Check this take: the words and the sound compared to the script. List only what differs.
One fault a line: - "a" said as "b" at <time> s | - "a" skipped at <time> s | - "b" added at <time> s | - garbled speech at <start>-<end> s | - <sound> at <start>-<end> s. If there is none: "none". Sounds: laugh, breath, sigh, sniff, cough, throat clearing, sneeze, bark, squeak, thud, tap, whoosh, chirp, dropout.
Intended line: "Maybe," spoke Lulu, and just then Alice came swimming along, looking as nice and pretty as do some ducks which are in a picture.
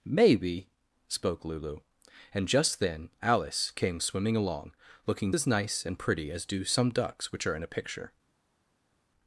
none